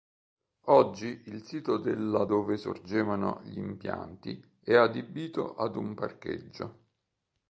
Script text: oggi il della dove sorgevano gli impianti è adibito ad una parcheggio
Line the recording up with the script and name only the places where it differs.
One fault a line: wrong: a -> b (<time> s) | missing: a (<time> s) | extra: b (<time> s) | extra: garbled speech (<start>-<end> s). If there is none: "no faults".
extra: sito (1.4 s)
wrong: una -> un (5.7 s)